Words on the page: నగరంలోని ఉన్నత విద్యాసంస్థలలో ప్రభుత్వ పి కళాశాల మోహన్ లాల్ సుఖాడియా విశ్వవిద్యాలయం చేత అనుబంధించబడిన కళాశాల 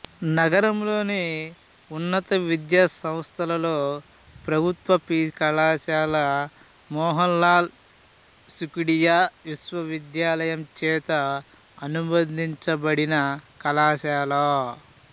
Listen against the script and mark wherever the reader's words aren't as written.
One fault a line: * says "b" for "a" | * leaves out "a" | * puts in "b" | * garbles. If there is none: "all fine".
all fine